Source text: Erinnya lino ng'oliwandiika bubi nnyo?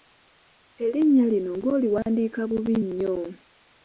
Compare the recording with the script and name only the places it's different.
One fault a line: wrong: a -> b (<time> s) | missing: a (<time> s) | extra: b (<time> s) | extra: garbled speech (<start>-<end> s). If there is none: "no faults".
no faults